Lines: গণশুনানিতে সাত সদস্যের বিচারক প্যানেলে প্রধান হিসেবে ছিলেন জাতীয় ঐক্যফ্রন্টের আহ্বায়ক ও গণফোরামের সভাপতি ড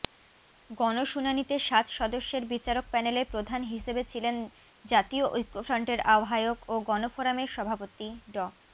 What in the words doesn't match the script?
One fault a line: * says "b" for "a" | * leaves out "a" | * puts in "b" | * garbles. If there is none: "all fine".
all fine